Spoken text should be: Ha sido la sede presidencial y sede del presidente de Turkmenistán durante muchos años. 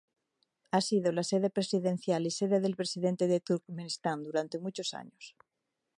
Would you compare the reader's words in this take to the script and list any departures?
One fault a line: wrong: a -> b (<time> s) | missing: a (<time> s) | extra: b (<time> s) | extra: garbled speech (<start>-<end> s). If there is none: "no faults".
no faults